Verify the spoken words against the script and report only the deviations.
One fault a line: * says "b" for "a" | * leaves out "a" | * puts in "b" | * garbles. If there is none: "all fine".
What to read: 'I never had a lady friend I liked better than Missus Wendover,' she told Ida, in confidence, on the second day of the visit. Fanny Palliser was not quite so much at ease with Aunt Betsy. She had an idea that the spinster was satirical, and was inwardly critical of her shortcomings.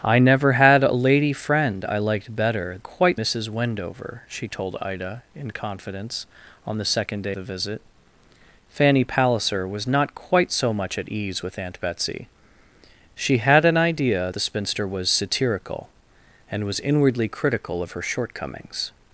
* says "quite" for "than"
* leaves out "of"
* leaves out "that"